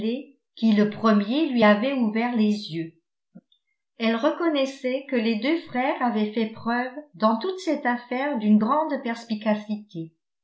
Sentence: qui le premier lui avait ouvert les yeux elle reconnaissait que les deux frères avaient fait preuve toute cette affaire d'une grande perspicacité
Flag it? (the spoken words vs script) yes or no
yes